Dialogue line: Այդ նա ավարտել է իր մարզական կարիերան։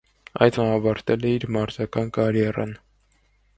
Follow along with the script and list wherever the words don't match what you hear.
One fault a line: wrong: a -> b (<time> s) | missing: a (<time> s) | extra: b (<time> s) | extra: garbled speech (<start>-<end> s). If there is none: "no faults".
no faults